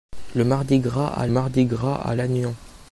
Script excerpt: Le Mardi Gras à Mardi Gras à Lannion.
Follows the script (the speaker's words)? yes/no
yes